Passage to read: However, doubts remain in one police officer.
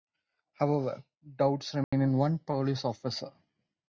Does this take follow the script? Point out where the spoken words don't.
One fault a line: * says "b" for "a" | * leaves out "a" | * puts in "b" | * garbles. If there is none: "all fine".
all fine